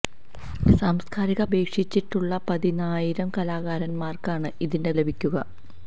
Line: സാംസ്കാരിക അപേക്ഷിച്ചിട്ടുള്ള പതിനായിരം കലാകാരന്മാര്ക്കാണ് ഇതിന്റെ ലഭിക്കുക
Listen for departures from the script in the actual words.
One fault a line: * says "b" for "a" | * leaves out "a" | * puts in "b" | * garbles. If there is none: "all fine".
all fine